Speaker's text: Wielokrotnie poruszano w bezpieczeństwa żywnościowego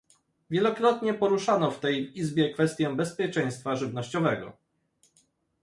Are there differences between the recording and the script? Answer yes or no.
yes